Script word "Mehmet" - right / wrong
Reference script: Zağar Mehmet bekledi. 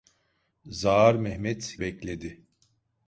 right